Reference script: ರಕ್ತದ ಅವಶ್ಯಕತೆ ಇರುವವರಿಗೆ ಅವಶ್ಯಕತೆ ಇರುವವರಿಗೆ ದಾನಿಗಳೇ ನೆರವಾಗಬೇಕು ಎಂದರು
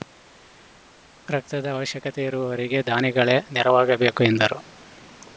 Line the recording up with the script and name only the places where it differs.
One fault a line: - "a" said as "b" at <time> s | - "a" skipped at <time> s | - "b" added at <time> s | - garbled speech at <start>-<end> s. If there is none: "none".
- "ಅವಶ್ಯಕತೆ ಇರುವವರಿಗೆ" skipped at 2.8 s